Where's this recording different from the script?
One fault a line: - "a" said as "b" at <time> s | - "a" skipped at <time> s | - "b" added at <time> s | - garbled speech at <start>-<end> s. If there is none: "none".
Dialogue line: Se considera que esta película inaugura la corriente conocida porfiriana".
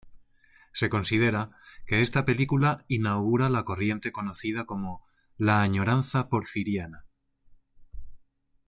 - "como la añoranza" added at 4.7 s